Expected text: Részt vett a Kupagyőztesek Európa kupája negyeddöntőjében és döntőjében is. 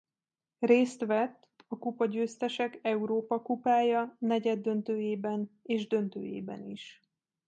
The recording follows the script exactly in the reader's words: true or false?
true